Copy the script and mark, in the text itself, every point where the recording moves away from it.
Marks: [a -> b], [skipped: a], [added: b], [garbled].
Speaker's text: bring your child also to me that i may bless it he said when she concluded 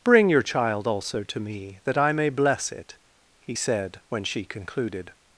bring your child also to me that i may bless it he said when she concluded